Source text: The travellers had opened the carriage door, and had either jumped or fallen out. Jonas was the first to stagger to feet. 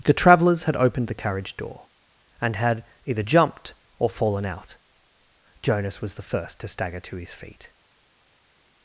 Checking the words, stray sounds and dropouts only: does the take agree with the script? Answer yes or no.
no